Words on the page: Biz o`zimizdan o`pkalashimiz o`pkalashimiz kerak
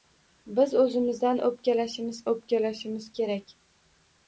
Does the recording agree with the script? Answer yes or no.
yes